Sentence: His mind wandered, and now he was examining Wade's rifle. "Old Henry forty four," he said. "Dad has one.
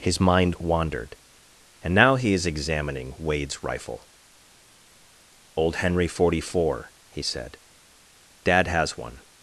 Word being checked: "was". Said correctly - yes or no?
no